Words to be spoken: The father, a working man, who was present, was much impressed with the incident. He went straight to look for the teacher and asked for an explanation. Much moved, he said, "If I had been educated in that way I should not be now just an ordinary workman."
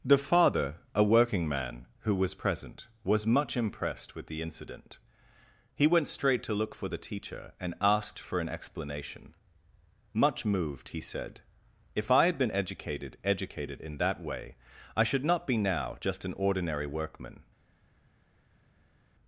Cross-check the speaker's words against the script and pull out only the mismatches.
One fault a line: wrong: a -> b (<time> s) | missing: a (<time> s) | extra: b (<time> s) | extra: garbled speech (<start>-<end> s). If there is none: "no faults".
extra: educated (13.3 s)